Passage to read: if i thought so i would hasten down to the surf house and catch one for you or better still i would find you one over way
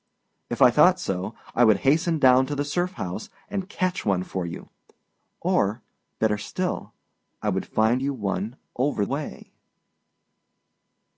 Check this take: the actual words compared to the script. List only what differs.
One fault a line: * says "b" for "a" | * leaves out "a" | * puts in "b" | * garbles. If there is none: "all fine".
all fine